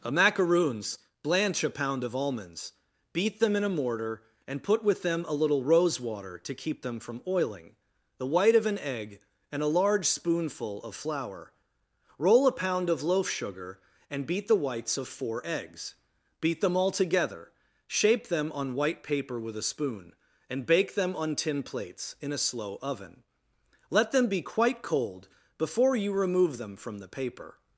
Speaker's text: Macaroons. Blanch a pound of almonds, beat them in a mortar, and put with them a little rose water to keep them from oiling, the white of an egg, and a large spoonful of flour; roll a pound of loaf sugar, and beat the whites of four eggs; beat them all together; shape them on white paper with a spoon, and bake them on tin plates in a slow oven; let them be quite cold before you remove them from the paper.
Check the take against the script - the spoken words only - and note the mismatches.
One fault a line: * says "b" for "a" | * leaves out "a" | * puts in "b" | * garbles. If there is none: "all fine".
* puts in "a"